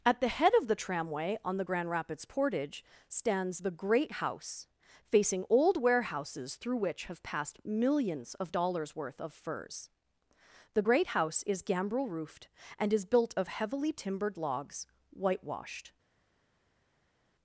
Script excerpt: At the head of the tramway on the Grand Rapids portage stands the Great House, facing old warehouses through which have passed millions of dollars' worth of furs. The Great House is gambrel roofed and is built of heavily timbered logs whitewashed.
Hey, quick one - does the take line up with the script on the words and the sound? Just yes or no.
yes